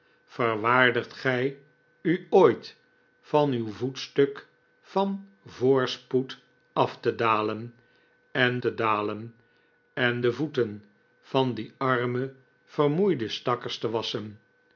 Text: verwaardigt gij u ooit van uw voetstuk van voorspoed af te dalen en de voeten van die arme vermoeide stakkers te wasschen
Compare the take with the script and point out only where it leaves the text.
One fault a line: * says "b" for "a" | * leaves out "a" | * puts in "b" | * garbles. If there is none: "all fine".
* puts in "te dalen en"